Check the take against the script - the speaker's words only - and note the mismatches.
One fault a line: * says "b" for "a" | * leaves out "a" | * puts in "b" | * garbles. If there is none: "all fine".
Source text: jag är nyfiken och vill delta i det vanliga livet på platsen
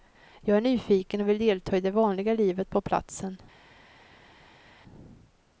all fine